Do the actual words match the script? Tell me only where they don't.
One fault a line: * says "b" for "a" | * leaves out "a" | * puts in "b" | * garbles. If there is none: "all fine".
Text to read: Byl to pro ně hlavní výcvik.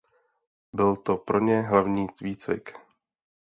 all fine